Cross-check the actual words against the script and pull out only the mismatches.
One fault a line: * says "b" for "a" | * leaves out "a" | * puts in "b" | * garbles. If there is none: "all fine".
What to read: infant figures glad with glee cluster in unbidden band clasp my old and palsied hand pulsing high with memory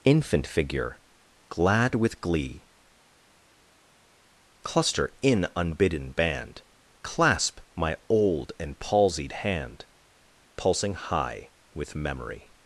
* says "figure" for "figures"